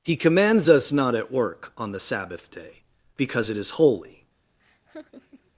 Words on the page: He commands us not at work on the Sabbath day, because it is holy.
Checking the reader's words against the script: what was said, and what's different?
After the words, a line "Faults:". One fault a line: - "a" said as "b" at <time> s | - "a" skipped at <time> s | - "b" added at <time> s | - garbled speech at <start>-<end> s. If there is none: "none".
He commands us not at work on the Sabbath day, because it is holy.
Faults:
none